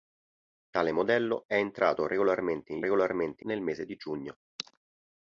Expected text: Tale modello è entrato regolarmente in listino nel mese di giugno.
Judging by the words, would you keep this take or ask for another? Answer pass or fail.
fail